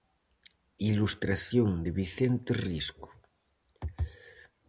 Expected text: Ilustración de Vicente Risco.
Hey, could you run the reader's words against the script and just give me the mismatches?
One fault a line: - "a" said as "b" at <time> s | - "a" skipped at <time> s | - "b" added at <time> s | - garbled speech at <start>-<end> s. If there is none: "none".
none